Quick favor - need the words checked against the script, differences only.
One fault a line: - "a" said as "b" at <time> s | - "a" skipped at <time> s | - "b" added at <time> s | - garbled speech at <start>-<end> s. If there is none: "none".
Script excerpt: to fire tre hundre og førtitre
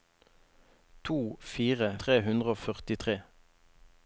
none